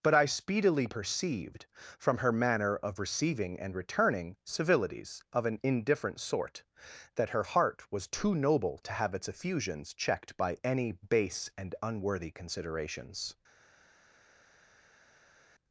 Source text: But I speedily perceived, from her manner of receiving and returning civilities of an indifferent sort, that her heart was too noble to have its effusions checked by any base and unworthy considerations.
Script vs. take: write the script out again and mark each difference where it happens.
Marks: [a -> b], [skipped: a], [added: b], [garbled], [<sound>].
But I speedily perceived, from her manner of receiving and returning civilities of an indifferent sort, that her heart was too noble to have its effusions checked by any base and unworthy considerations.